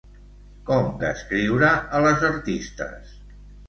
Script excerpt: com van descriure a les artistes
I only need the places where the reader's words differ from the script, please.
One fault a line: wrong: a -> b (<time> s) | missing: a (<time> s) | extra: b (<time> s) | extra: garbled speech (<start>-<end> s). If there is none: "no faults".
missing: van (0.9 s)